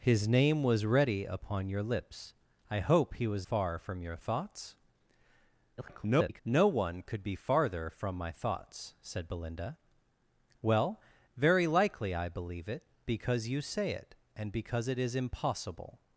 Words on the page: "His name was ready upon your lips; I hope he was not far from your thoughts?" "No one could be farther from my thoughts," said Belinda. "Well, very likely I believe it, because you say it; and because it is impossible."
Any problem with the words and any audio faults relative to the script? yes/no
yes